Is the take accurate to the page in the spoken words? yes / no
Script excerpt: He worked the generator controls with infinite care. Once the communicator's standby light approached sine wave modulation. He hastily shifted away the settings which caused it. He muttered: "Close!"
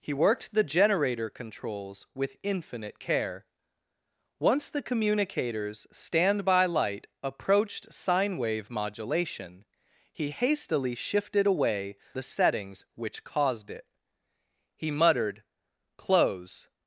yes